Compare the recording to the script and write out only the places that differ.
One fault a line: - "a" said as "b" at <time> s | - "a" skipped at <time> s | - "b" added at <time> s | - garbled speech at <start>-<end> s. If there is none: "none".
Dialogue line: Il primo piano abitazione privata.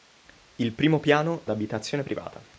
none